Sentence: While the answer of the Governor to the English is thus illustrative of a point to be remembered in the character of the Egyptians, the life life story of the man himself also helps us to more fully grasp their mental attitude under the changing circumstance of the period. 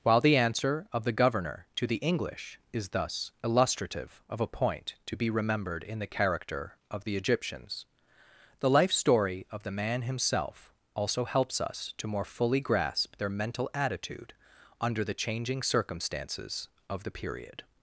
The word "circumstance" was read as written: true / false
false